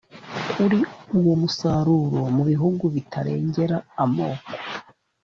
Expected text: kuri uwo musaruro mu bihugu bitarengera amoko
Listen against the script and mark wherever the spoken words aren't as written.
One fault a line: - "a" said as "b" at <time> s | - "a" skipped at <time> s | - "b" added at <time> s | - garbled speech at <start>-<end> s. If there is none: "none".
none